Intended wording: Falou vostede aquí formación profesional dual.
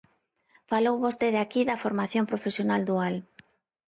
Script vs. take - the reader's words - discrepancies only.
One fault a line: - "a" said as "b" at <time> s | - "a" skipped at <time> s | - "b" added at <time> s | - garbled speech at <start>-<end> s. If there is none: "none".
- "da" added at 1.7 s